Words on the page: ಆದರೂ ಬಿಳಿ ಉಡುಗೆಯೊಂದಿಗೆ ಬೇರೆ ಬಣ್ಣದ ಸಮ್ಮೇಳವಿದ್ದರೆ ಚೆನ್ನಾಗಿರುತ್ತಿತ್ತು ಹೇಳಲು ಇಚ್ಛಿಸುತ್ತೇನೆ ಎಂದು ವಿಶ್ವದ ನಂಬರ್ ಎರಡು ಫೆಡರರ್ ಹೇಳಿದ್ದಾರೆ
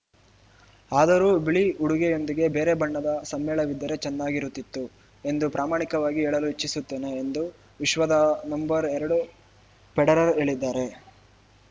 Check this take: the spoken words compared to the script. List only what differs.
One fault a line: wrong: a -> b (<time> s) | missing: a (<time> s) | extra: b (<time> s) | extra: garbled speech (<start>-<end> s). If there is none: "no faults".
extra: ಎಂದು ಪ್ರಾಮಾಣಿಕವಾಗಿ (5.2 s)